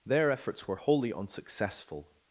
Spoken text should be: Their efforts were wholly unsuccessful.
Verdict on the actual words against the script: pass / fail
pass